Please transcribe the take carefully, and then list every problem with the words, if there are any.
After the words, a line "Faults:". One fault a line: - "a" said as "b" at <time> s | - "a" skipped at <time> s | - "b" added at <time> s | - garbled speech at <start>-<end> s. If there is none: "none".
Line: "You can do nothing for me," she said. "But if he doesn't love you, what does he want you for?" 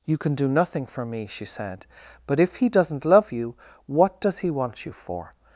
"You can do nothing for me," she said. "But if he doesn't love you, what does he want you for?"
Faults:
none